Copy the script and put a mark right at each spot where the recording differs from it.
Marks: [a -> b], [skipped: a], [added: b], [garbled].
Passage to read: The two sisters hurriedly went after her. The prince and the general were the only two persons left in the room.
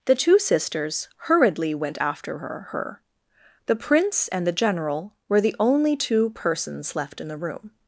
The two sisters hurriedly went after her. [added: her] The prince and the general were the only two persons left in the room.